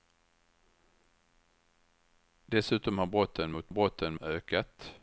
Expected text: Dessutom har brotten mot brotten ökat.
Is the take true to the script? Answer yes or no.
yes